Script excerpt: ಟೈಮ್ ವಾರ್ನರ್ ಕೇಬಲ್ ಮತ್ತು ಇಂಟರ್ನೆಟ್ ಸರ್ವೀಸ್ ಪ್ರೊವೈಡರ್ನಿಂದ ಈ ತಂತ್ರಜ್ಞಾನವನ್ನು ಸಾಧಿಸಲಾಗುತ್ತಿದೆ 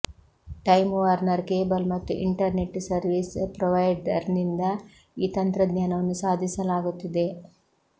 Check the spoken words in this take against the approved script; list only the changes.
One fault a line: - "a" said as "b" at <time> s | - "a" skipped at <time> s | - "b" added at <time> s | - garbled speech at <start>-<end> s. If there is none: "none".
none